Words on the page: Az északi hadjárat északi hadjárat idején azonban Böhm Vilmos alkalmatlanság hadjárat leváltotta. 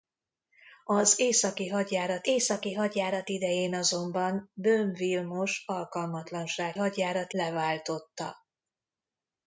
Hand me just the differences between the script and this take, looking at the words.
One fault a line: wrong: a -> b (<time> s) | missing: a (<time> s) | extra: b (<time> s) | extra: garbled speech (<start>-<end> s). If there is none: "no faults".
no faults